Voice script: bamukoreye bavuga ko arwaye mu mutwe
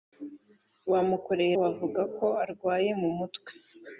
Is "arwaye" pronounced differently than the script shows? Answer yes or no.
no